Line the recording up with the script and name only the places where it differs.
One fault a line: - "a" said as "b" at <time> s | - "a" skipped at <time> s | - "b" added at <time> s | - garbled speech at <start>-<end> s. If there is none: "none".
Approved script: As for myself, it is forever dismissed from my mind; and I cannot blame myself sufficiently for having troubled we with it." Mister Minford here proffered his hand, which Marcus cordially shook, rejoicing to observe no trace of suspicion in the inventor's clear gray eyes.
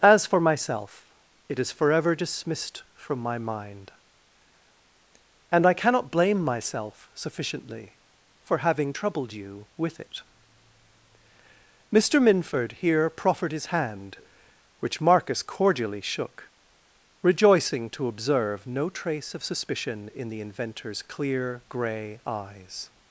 - "we" said as "you" at 9.3 s